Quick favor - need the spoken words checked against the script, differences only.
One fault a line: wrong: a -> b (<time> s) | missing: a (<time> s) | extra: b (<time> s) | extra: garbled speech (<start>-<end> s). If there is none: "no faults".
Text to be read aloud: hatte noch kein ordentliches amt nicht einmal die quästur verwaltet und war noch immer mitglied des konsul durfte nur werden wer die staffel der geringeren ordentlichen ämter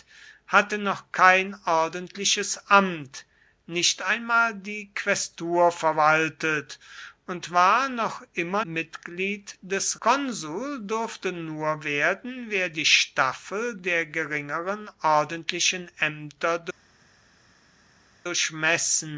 no faults